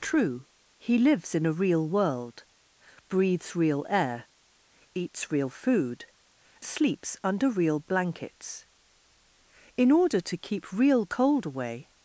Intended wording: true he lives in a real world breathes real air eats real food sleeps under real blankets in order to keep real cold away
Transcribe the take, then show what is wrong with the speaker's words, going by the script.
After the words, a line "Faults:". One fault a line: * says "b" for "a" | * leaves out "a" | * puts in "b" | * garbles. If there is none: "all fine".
true he lives in a real world breathes real air eats real food sleeps under real blankets in order to keep real cold away
Faults:
all fine